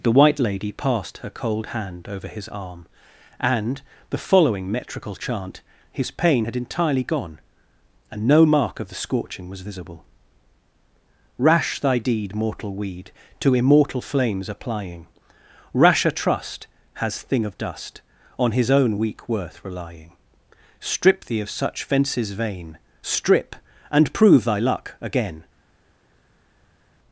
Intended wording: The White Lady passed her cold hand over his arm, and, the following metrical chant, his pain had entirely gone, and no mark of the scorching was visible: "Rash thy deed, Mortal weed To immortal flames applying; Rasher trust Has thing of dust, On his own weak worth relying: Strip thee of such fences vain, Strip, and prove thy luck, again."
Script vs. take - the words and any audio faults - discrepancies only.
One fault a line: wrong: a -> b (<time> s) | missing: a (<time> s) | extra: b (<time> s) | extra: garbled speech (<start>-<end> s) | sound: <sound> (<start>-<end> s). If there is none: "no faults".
no faults